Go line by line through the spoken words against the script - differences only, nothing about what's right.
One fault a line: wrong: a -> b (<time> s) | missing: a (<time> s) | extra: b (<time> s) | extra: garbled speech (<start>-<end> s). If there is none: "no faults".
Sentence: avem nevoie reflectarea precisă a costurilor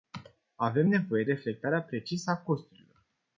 no faults